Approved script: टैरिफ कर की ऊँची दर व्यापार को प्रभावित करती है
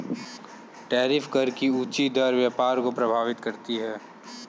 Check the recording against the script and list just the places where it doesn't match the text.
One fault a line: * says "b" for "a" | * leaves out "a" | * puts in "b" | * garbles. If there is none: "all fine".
all fine